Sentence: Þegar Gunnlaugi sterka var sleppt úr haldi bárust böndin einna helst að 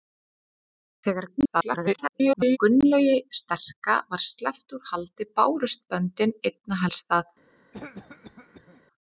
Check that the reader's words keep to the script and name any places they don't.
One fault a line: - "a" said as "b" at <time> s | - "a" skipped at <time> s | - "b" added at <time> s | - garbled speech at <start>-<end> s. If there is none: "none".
- garbled speech at 1.4-2.6 s